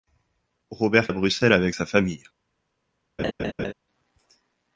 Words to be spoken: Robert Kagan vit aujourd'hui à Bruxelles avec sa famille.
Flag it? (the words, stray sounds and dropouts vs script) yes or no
yes